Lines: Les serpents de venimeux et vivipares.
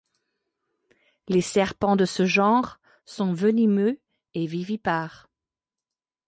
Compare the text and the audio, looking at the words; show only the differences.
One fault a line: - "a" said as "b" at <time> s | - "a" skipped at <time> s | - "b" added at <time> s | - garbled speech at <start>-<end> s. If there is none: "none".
- "ce genre sont" added at 2.0 s